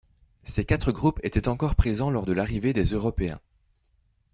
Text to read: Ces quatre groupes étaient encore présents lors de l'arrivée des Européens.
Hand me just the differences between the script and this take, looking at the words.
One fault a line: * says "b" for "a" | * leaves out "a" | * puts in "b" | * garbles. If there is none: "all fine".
all fine